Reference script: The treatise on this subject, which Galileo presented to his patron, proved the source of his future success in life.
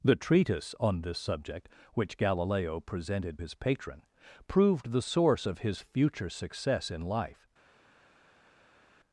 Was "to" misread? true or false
true